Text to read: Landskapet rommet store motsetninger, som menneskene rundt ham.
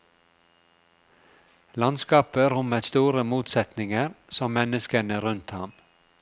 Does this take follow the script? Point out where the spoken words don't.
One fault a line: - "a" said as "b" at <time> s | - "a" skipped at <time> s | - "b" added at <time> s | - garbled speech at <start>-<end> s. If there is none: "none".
none